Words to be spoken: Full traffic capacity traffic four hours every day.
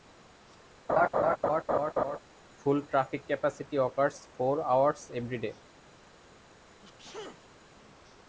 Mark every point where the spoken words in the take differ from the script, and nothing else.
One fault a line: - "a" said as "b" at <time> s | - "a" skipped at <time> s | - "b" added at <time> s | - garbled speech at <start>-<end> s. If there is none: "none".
- "traffic" said as "occurs" at 3.7 s